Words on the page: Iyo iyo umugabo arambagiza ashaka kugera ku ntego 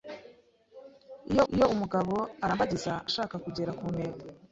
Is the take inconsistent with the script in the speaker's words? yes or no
no